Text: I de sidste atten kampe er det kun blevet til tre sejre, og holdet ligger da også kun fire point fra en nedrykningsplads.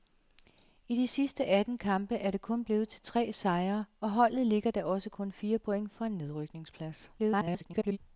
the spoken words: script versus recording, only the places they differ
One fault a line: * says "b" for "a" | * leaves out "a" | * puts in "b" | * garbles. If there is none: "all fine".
* garbles